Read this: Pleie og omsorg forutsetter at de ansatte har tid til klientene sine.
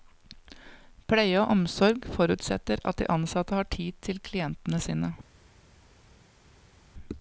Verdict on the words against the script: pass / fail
pass